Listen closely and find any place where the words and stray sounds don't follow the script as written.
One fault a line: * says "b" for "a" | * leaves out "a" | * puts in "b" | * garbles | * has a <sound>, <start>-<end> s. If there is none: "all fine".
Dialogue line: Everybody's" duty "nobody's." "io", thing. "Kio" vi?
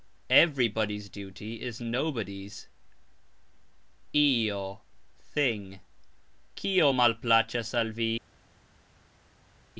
* puts in "is"
* puts in "malplacxas al"